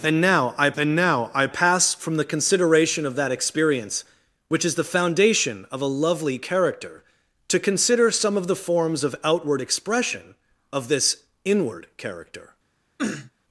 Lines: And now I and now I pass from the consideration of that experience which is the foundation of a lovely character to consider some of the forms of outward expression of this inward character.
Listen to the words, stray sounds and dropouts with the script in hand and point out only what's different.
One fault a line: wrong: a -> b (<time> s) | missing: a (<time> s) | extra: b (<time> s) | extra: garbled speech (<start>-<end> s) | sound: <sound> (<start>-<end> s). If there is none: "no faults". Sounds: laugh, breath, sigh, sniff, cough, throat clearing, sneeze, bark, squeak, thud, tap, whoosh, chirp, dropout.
sound: sniff (13.0-13.3 s)